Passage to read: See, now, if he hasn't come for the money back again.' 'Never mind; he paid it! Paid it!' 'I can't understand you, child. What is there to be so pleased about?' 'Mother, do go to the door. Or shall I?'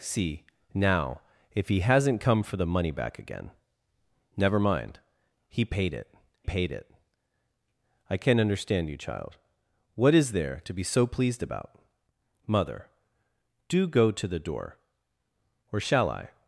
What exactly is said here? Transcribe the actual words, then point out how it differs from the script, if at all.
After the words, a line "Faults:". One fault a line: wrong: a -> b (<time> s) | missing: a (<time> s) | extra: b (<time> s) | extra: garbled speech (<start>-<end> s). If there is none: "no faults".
See, now, if he hasn't come for the money back again.' 'Never mind; he paid it! Paid it!' 'I can't understand you, child. What is there to be so pleased about?' 'Mother, do go to the door. Or shall I?'
Faults:
no faults